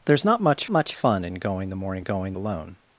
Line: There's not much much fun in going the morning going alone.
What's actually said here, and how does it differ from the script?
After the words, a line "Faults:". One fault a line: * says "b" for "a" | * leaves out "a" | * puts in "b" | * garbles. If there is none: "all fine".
There's not much much fun in going the morning going alone.
Faults:
all fine